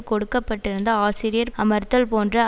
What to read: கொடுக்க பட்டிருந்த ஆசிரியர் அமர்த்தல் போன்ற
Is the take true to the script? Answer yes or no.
yes